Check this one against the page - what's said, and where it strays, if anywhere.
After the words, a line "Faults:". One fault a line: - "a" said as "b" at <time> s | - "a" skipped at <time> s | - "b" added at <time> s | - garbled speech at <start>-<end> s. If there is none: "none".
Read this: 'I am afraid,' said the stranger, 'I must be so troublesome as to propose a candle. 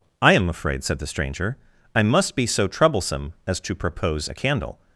'I am afraid,' said the stranger, 'I must be so troublesome as to propose a candle.
Faults:
none